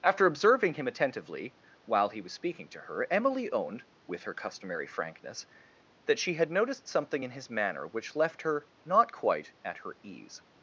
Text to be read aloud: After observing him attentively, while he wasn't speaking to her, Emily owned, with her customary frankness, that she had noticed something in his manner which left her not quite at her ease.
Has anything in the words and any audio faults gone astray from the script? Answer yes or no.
yes